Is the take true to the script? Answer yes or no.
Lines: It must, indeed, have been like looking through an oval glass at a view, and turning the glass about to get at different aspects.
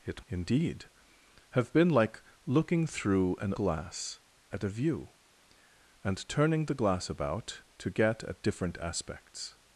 no